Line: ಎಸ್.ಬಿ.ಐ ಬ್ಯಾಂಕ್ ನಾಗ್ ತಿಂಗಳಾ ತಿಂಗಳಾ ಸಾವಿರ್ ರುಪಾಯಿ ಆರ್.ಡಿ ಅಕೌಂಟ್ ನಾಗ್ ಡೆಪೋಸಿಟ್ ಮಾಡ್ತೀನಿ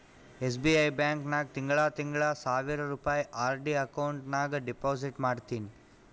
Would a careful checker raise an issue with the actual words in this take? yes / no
no